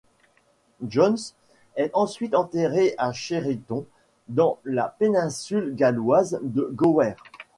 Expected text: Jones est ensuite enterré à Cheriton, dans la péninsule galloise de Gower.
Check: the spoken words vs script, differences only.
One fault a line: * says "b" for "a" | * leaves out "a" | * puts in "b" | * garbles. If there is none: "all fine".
all fine